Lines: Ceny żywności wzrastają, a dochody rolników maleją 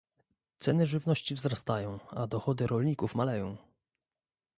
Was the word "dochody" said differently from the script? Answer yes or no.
no